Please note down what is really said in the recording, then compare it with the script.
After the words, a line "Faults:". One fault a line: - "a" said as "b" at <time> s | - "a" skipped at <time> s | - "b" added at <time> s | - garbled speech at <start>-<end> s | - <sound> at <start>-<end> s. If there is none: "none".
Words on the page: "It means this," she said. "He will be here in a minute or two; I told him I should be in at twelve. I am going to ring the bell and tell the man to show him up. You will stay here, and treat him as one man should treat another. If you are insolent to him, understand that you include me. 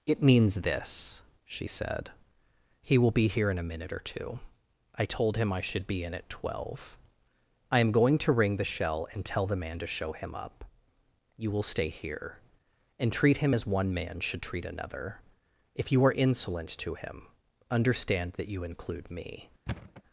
"It means this," she said. "He will be here in a minute or two; I told him I should be in at twelve. I am going to ring the shell and tell the man to show him up. You will stay here, and treat him as one man should treat another. If you are insolent to him, understand that you include me.
Faults:
- "bell" said as "shell" at 8.6 s
- thud at 19.7-20.0 s